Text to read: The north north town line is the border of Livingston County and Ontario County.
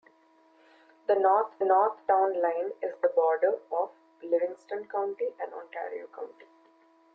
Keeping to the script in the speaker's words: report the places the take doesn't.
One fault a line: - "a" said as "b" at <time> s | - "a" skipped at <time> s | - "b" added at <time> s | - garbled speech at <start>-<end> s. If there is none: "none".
none